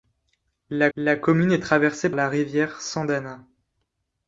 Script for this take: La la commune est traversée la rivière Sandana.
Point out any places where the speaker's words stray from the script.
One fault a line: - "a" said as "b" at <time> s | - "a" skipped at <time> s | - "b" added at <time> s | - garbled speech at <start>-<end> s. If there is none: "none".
none